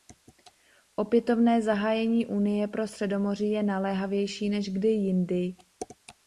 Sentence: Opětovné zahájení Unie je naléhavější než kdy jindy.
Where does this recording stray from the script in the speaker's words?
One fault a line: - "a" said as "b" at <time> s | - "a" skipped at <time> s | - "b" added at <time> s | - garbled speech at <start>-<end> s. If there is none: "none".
- "pro Středomoří" added at 2.7 s